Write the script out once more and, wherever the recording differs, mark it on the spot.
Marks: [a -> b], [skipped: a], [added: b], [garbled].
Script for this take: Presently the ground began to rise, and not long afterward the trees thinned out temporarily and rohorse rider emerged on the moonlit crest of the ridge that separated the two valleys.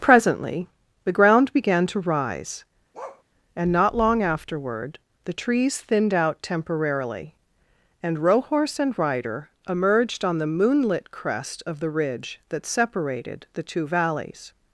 Presently the ground began to rise, and not long afterward the trees thinned out temporarily and rohorse [added: and] rider emerged on the moonlit crest of the ridge that separated the two valleys.